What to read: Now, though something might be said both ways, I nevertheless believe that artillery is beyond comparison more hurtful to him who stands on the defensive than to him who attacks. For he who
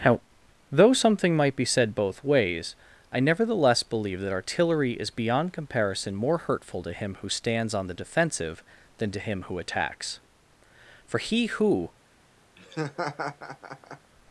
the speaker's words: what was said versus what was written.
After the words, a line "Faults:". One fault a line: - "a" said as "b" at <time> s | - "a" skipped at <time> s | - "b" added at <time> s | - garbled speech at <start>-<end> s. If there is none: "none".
Now, though something might be said both ways, I nevertheless believe that artillery is beyond comparison more hurtful to him who stands on the defensive than to him who attacks. For he who
Faults:
none